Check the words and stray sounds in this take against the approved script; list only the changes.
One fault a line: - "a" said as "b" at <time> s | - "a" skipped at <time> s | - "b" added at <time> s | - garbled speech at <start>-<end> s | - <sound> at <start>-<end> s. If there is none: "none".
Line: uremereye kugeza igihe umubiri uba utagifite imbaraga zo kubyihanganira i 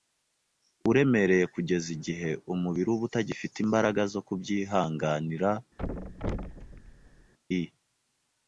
- thud at 5.8-7.3 s